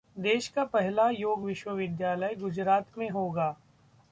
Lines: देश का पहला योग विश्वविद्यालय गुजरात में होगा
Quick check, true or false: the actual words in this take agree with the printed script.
true